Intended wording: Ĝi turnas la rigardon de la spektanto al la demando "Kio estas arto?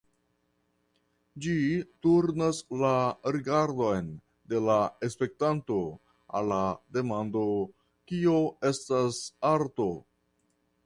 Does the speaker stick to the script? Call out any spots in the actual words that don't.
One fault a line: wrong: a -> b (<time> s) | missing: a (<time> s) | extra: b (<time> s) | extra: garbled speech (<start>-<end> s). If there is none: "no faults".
no faults